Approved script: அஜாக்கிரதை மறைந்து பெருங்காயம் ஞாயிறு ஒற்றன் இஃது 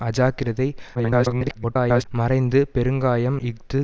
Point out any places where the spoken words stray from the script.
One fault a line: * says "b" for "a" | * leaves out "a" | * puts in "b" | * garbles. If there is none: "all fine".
* garbles
* leaves out "ஞாயிறு ஒற்றன்"